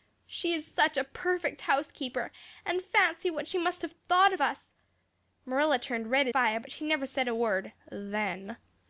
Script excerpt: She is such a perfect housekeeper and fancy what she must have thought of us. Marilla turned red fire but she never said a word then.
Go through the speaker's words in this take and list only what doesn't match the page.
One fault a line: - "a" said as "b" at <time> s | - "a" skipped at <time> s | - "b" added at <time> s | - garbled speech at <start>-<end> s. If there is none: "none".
none